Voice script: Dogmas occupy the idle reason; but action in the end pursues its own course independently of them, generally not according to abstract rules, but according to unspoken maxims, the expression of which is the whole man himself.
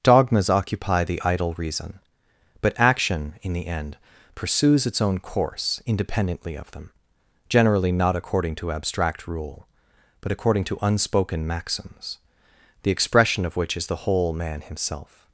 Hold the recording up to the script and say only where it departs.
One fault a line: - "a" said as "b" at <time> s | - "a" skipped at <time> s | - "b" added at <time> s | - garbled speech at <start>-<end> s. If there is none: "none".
- "rules" said as "rule" at 9.3 s